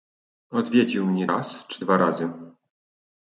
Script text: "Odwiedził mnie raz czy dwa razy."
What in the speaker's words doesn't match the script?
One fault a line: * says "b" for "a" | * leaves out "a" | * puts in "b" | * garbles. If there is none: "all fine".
all fine